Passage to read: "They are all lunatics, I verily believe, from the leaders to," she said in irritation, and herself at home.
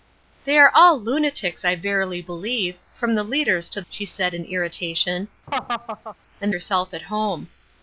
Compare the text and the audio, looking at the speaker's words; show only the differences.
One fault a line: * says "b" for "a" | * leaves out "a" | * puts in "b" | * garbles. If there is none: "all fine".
all fine